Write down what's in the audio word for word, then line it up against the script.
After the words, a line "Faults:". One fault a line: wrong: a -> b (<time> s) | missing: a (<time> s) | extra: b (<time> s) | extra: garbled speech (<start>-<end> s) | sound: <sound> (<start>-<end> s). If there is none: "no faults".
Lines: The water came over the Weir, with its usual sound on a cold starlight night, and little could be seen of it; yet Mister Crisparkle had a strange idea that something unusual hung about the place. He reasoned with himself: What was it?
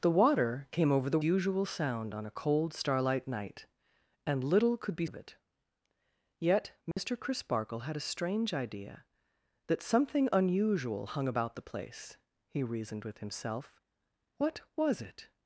The water came over the Usual sound on a cold starlight night, and little could be of it; yet Mister Crisparkle had a strange idea that something unusual hung about the place. He reasoned with himself: What was it?
Faults:
missing: Weir with its (1.2 s)
missing: seen (5.1 s)
sound: dropout (6.9-7.0 s)